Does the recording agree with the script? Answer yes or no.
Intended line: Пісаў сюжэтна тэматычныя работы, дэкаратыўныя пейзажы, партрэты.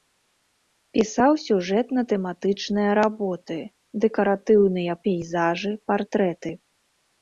yes